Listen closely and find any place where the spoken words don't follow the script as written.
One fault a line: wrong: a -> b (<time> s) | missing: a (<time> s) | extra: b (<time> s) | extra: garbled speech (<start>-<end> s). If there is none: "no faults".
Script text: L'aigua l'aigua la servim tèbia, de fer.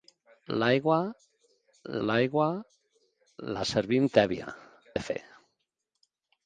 no faults